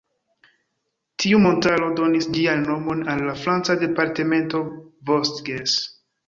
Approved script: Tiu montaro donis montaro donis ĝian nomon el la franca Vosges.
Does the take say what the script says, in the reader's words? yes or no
no